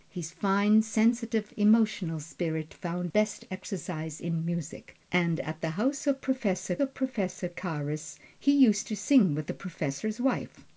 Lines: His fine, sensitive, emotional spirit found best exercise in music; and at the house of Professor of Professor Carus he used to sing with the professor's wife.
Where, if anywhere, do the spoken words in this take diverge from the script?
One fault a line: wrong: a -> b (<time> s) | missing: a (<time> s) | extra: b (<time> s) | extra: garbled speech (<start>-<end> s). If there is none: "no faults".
no faults